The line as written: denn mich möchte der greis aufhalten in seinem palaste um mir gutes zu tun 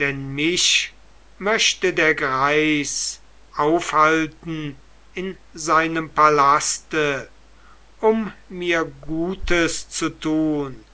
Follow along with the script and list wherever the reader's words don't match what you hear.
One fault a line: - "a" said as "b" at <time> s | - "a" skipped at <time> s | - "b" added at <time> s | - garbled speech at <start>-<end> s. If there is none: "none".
none